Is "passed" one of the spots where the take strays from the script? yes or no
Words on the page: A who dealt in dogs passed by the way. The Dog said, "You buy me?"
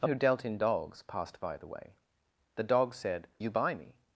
no